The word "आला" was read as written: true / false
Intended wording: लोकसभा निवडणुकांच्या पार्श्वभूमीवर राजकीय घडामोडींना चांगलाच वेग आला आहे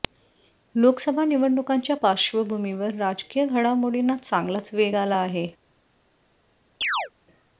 true